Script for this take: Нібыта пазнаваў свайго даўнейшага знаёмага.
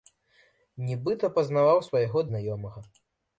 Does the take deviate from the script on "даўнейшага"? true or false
true